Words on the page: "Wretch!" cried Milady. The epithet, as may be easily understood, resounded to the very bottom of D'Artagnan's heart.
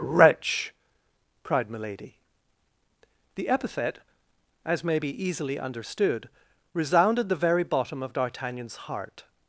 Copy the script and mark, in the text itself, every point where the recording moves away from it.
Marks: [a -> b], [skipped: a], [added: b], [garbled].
"Wretch!" cried Milady. The epithet, as may be easily understood, resounded [skipped: to] the very bottom of D'Artagnan's heart.